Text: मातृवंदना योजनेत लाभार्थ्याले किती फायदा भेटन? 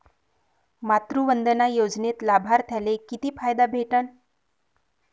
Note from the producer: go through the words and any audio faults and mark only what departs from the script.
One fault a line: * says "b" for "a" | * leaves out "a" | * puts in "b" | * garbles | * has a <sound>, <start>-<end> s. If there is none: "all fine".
all fine